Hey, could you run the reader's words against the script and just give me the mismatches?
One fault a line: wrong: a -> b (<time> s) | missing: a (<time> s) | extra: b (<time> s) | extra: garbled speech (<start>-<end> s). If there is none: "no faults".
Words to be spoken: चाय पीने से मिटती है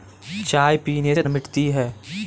no faults